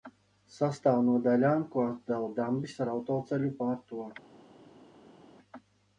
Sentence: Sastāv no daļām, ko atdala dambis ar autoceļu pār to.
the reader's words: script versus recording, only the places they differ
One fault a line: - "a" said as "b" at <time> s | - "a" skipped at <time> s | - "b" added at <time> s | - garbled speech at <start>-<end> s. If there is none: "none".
none